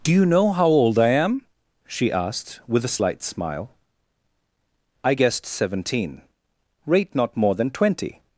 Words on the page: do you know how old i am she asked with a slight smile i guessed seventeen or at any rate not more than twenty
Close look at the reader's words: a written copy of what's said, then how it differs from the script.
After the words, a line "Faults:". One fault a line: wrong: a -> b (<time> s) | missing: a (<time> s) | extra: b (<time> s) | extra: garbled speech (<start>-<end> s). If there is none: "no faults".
do you know how old i am she asked with a slight smile i guessed seventeen rate not more than twenty
Faults:
missing: or at any (6.2 s)